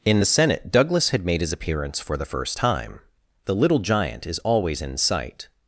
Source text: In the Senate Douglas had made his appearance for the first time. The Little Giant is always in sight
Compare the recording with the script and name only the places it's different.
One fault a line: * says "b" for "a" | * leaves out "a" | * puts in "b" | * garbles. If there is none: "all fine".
all fine